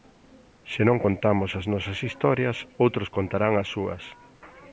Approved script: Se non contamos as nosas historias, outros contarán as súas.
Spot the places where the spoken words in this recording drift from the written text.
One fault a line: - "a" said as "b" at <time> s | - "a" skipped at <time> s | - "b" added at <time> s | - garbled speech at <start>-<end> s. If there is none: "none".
none